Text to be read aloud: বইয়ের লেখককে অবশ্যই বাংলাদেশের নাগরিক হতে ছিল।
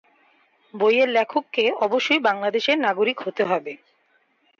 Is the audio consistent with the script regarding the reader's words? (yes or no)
no